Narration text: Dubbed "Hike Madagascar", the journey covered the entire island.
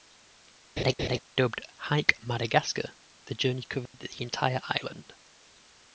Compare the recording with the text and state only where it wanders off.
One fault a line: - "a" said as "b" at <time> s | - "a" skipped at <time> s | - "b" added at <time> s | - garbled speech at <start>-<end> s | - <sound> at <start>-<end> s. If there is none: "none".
- laugh at 0.8-1.2 s
- dropout at 3.9-3.9 s